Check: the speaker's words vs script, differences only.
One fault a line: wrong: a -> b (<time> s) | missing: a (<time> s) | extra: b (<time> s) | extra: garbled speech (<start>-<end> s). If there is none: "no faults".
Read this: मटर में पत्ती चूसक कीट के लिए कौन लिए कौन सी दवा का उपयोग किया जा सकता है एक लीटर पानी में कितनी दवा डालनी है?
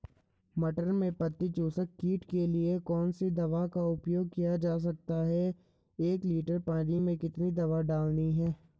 missing: लिए कौन (3.1 s)